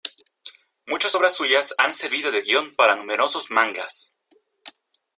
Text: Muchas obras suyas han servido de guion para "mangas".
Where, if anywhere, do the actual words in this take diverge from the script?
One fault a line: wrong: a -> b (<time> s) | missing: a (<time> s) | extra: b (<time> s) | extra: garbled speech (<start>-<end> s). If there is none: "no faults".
extra: numerosos (3.0 s)